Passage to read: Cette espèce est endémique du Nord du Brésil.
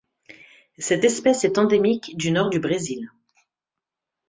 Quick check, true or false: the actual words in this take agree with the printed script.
true